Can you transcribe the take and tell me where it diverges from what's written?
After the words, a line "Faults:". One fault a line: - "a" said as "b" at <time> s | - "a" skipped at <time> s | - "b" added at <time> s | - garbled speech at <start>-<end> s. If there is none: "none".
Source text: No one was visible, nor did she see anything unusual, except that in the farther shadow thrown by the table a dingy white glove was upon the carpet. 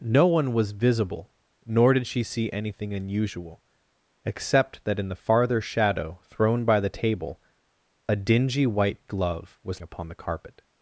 No one was visible, nor did she see anything unusual, except that in the farther shadow thrown by the table a dingy white glove was upon the carpet.
Faults:
none